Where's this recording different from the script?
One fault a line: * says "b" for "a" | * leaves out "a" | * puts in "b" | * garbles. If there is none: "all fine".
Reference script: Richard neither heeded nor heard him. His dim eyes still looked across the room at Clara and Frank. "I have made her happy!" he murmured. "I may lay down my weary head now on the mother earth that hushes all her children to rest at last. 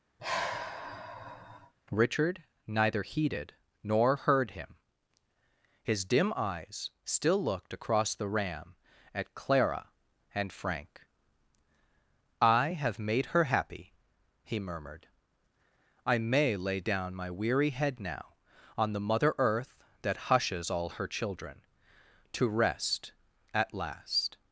* says "ram" for "room"